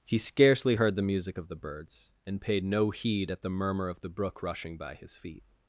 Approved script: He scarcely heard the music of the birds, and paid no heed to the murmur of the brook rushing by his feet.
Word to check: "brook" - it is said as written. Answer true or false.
true